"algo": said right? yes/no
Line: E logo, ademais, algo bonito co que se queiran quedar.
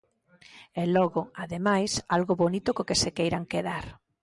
yes